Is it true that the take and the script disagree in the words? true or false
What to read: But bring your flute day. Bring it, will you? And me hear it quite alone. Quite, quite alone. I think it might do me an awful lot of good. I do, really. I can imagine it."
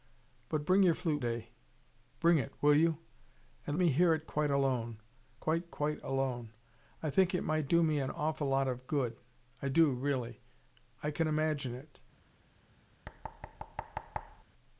false